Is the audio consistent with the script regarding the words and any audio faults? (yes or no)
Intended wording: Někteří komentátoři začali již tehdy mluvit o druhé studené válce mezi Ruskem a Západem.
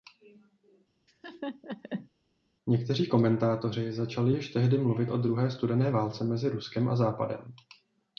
no